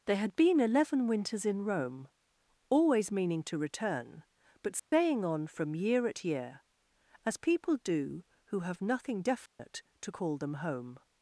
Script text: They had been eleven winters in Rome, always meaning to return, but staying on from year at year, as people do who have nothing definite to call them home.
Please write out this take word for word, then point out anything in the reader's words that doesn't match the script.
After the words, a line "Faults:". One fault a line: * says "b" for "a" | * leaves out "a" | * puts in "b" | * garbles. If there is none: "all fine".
They had been eleven winters in Rome, always meaning to return, but staying on from year at year, as people do who have nothing definite to call them home.
Faults:
all fine